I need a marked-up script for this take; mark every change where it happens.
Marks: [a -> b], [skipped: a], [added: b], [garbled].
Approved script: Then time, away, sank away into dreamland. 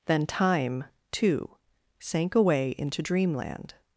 Then time, [away, -> too] sank away into dreamland.